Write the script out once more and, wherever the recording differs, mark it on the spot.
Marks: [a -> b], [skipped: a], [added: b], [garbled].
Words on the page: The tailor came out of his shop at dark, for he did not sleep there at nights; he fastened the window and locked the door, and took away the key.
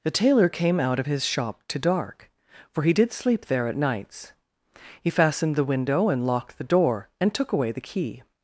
The tailor came out of his shop [at -> to] dark, for he did [skipped: not] sleep there at nights; he fastened the window and locked the door, and took away the key.